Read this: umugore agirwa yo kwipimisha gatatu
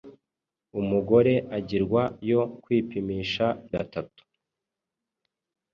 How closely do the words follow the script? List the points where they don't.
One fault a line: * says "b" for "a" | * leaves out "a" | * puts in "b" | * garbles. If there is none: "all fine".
all fine